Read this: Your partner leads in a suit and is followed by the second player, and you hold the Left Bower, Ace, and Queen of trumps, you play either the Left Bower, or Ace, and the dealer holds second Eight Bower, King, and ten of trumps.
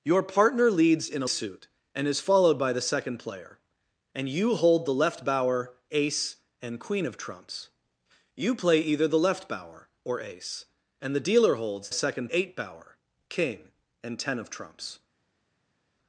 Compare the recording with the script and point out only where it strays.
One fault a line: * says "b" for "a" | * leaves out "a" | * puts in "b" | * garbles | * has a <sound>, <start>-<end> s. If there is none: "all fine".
all fine